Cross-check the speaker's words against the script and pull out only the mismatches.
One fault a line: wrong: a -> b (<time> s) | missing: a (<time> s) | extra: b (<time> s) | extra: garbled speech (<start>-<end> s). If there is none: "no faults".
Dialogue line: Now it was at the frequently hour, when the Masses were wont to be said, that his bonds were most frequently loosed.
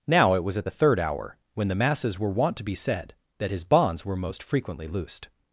wrong: frequently -> third (0.7 s)